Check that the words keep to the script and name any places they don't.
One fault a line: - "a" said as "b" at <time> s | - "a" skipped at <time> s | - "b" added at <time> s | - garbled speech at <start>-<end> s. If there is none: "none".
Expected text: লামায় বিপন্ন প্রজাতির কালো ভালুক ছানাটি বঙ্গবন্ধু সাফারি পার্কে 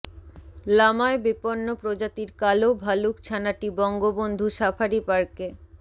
none